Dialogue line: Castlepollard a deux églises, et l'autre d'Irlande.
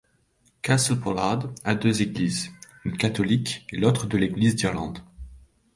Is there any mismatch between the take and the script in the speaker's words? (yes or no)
yes